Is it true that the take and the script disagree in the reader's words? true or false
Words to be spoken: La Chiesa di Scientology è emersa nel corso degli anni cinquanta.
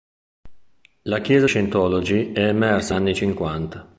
true